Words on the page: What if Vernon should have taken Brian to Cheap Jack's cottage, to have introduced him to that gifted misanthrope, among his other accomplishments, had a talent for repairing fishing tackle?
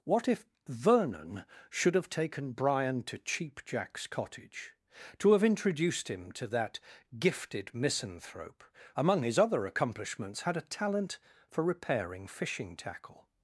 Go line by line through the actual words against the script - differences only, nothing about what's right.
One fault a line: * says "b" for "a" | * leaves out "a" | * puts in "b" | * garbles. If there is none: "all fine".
all fine